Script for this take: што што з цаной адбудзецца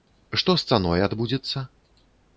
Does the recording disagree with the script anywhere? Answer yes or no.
yes